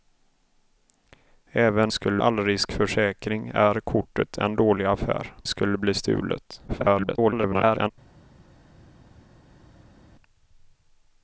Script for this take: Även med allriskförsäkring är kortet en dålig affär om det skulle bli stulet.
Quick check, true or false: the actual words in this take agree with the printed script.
false